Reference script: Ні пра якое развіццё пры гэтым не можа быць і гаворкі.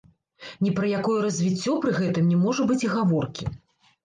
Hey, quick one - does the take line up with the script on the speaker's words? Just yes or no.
yes